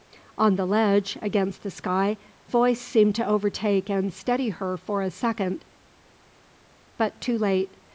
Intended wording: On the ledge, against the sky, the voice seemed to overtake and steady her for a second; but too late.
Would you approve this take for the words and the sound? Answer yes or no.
no